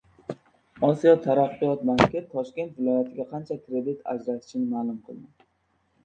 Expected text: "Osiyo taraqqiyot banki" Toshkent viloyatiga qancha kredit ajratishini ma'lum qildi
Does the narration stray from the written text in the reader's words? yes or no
no